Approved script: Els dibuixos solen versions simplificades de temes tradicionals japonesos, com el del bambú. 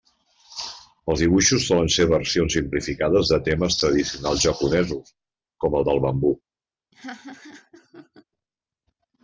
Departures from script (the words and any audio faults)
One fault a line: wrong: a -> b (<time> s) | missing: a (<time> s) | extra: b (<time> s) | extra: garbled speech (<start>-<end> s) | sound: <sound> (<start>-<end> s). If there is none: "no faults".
extra: ser (1.9 s)
sound: laugh (6.9-8.2 s)